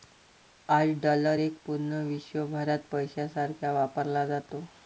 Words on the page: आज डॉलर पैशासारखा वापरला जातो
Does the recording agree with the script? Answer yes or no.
no